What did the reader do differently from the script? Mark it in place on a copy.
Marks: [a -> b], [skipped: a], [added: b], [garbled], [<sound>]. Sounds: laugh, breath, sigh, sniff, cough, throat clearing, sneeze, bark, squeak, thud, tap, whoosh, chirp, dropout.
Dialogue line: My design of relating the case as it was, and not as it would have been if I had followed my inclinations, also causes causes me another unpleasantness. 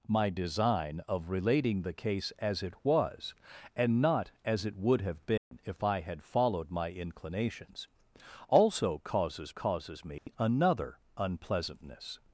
My design of relating the case as it was, and not as it would have been [dropout] if I had followed my inclinations, also causes causes me [dropout] another unpleasantness.